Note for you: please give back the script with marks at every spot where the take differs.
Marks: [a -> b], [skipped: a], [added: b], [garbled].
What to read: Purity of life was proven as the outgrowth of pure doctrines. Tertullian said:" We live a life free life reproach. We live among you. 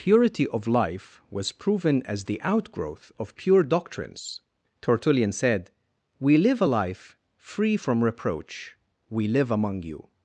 Purity of life was proven as the outgrowth of pure doctrines. Tertullian said:" We live a life free [life -> from] reproach. We live among you.